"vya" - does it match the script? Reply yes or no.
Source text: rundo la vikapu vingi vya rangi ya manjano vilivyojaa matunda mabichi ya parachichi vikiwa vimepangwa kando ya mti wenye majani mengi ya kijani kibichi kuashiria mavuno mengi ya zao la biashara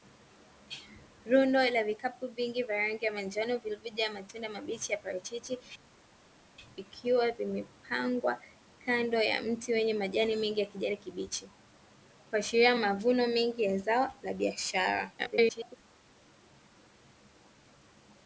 yes